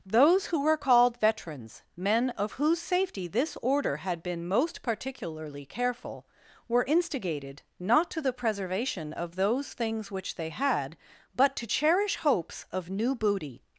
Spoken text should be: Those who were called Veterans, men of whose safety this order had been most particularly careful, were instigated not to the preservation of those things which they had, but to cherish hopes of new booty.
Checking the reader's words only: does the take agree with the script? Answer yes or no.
yes